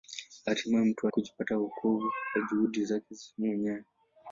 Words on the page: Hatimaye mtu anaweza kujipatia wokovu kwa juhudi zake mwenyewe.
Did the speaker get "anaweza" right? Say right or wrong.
wrong